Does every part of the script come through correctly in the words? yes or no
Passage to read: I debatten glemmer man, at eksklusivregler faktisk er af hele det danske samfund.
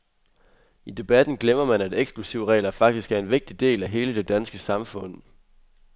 no